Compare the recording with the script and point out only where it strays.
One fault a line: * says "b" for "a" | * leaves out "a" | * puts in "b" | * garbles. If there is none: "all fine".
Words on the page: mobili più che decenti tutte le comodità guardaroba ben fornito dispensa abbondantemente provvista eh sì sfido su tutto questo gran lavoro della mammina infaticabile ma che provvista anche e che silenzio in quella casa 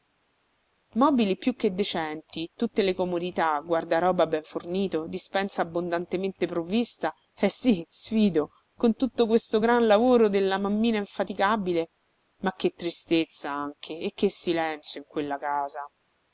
* says "con" for "su"
* says "tristezza" for "provvista"